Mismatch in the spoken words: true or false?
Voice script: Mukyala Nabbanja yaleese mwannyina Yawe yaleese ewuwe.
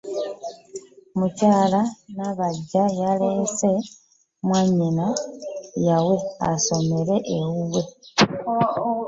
true